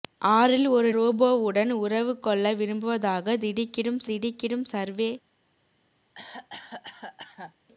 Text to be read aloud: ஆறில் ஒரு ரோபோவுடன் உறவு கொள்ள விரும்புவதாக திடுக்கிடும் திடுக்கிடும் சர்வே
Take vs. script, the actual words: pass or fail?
pass